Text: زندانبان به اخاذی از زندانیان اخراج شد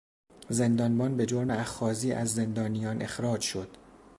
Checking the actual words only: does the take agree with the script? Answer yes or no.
no